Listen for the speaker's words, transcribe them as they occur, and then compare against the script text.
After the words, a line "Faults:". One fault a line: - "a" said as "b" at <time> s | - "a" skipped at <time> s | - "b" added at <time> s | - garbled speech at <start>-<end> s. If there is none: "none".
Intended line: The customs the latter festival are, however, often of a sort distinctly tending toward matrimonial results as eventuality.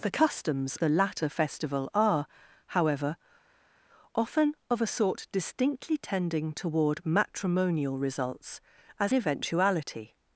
The customs the latter festival are, however, often of a sort distinctly tending toward matrimonial results as eventuality.
Faults:
none